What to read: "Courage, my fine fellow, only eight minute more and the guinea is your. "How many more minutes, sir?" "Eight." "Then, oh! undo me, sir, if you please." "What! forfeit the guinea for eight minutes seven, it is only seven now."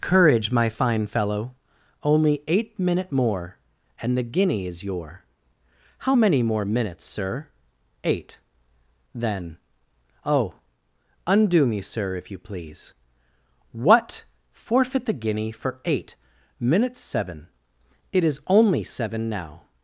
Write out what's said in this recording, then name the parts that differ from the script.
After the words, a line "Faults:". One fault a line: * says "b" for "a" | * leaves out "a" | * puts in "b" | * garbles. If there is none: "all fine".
"Courage, my fine fellow, only eight minute more and the guinea is your. "How many more minutes, sir?" "Eight." "Then, oh! undo me, sir, if you please." "What! forfeit the guinea for eight minutes seven, it is only seven now."
Faults:
all fine